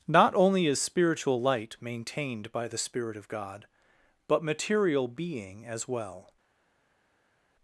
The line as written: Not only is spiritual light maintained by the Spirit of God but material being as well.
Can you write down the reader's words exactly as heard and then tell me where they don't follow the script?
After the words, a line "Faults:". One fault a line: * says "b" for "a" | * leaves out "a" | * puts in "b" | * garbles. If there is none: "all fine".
Not only is spiritual light maintained by the Spirit of God but material being as well.
Faults:
all fine